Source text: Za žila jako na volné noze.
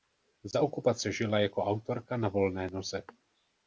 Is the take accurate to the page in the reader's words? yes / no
no